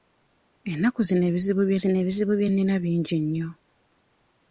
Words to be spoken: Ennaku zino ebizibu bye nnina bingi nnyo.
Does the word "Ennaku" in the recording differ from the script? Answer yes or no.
no